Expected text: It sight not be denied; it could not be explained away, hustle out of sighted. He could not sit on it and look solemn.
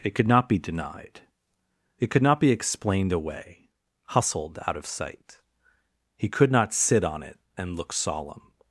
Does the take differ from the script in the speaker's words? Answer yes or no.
yes